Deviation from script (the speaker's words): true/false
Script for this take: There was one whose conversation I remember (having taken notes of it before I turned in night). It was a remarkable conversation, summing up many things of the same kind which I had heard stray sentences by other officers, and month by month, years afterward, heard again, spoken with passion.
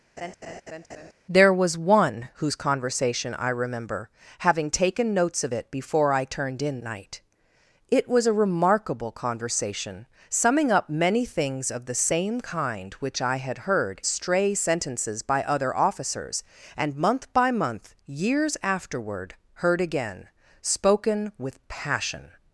false